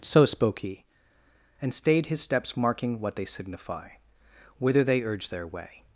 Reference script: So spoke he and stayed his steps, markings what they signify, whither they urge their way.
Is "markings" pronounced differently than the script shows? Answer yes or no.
yes